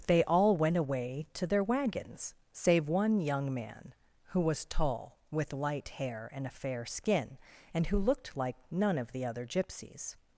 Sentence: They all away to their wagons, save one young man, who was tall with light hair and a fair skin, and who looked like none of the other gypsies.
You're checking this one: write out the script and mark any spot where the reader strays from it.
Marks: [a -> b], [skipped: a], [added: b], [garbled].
They all [added: went] away to their wagons, save one young man, who was tall with light hair and a fair skin, and who looked like none of the other gypsies.